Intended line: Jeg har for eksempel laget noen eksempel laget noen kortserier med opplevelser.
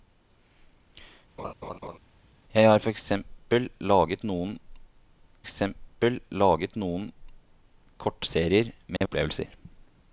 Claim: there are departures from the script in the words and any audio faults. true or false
true